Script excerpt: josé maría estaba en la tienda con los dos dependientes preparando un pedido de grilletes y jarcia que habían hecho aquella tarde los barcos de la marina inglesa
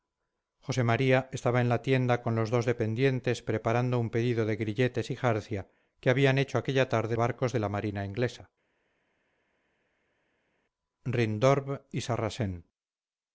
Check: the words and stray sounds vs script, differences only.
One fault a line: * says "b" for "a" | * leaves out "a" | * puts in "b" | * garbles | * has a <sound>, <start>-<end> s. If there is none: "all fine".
* leaves out "los"